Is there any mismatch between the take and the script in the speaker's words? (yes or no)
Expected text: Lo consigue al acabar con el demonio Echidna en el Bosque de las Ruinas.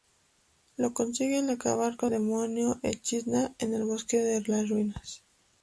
yes